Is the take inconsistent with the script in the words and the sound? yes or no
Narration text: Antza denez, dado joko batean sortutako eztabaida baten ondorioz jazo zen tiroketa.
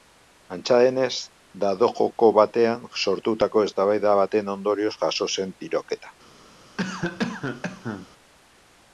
yes